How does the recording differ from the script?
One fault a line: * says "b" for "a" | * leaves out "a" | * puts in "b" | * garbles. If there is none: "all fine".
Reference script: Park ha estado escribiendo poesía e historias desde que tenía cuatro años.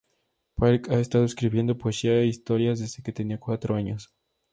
all fine